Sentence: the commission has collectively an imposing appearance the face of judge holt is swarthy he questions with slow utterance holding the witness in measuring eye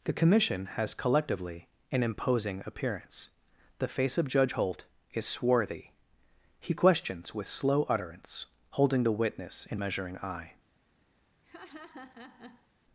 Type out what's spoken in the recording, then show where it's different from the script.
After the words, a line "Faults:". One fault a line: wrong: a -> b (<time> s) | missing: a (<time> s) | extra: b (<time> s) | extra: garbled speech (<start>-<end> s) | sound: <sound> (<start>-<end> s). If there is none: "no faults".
the commission has collectively an imposing appearance the face of judge holt is swarthy he questions with slow utterance holding the witness in measuring eye
Faults:
sound: laugh (11.4-12.7 s)